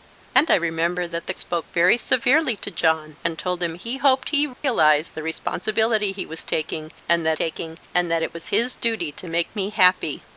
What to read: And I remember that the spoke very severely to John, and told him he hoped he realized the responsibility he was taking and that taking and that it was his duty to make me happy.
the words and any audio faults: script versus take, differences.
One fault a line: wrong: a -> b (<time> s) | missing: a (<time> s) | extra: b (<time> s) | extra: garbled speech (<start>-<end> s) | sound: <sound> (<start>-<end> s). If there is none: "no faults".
sound: dropout (4.5-4.6 s)